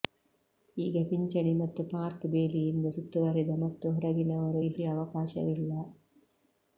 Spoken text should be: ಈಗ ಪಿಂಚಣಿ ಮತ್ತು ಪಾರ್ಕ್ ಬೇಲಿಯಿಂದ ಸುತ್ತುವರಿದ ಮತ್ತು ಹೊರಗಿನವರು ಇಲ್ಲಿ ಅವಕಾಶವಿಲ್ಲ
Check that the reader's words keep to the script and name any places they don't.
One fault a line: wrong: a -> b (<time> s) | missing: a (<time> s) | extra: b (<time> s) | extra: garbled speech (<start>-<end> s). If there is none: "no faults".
no faults